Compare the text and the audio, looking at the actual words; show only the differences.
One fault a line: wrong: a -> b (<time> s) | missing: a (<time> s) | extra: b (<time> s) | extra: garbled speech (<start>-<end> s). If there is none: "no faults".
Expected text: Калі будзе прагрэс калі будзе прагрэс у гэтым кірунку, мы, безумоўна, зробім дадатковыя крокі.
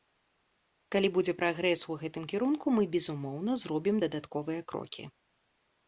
missing: калі будзе прагрэс (1.8 s)